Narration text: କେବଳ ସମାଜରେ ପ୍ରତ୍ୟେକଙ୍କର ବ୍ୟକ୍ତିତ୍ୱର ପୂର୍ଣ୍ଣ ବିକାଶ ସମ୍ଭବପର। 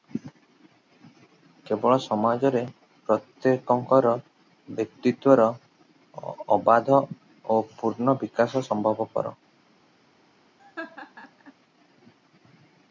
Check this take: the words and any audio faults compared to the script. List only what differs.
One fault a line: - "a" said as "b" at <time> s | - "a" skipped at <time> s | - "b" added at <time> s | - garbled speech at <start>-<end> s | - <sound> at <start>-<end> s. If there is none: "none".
- "ଅବାଧ ଓ" added at 6.6 s
- laugh at 10.6-11.5 s